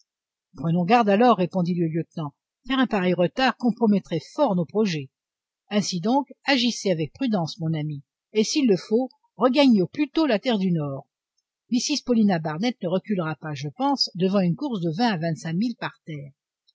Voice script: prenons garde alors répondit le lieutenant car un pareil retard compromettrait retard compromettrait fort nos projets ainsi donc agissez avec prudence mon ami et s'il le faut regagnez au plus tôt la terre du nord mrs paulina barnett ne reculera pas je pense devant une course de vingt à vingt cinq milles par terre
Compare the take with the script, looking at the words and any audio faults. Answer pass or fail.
fail